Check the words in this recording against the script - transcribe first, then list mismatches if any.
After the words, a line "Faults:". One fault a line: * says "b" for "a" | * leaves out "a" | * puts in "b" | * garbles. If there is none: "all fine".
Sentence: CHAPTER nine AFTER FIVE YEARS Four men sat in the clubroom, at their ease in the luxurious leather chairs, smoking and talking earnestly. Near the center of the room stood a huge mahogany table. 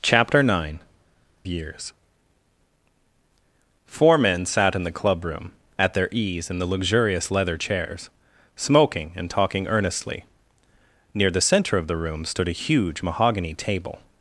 CHAPTER nine YEARS Four men sat in the clubroom, at their ease in the luxurious leather chairs, smoking and talking earnestly. Near the center of the room stood a huge mahogany table.
Faults:
* leaves out "AFTER FIVE"